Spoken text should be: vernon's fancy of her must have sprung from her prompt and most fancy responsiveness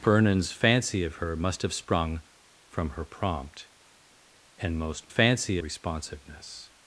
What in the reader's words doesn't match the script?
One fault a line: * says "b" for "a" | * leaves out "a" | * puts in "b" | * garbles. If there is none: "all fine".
all fine